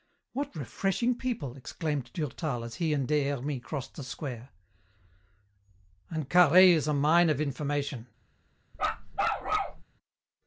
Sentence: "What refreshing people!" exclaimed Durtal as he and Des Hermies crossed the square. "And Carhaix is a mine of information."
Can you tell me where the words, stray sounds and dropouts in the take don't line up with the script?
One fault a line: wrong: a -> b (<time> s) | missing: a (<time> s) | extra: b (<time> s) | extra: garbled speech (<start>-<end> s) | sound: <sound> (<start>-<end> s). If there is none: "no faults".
sound: bark (8.7-9.8 s)